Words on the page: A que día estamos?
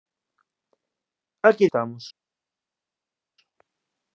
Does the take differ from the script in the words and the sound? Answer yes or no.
yes